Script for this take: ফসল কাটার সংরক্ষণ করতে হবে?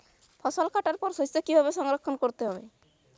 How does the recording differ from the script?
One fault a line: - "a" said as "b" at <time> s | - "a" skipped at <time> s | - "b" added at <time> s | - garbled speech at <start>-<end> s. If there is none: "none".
- "পর শস্য কীভাবে" added at 1.0 s